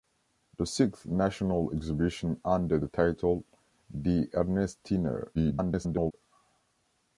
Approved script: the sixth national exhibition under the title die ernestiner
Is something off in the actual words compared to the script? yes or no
yes